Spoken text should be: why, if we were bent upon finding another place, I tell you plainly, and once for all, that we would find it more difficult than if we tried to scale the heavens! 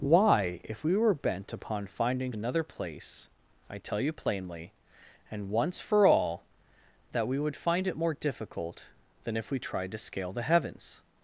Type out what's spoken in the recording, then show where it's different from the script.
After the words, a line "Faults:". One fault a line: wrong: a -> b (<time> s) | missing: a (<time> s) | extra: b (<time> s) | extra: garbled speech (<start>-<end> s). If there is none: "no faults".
why, if we were bent upon finding another place, I tell you plainly, and once for all, that we would find it more difficult than if we tried to scale the heavens!
Faults:
no faults